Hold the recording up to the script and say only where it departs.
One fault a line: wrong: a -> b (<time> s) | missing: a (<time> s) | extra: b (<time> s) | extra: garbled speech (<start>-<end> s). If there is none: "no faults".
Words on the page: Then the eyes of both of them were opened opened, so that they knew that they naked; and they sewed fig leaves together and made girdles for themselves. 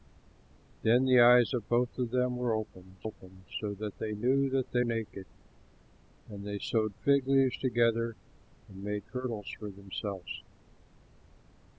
no faults